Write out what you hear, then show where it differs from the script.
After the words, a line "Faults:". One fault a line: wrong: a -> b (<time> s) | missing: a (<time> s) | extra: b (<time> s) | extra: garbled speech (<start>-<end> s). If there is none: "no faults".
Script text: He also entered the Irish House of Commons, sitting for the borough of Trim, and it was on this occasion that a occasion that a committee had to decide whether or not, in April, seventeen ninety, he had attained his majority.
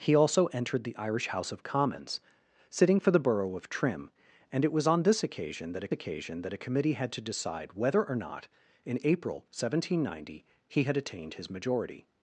He also entered the Irish House of Commons, sitting for the borough of Trim, and it was on this occasion that a occasion that a committee had to decide whether or not, in April, seventeen ninety, he had attained his majority.
Faults:
no faults